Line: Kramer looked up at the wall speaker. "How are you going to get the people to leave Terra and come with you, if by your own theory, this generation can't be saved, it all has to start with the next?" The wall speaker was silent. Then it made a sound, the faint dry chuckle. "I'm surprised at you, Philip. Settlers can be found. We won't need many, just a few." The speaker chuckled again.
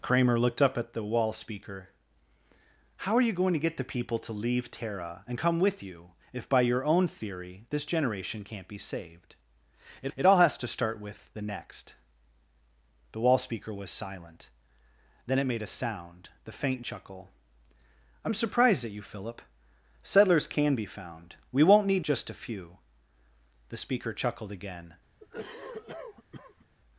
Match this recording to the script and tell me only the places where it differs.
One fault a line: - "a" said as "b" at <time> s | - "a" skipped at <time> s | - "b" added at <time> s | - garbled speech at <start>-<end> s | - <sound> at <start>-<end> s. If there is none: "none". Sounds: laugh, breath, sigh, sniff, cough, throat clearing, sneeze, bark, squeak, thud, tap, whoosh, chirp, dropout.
- "it" added at 10.1 s
- "dry" skipped at 16.8 s
- "many" skipped at 22.1 s
- cough at 25.2-26.7 s